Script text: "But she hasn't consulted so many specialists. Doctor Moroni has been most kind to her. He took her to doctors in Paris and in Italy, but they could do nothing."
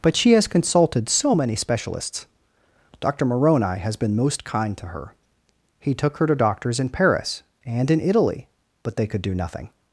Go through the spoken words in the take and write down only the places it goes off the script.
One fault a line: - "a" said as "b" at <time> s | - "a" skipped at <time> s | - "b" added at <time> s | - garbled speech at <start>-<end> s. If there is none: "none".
- "hasn't" said as "has" at 0.3 s